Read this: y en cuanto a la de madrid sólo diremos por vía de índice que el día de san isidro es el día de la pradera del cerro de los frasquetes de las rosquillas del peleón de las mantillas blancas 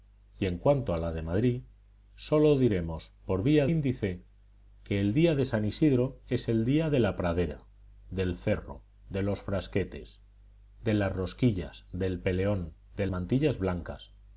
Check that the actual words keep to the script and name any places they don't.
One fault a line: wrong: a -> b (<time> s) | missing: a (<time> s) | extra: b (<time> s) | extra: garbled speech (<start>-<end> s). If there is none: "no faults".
missing: de (3.7 s)
missing: las (13.1 s)